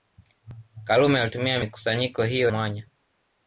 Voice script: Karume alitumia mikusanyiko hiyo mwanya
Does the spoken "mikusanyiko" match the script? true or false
true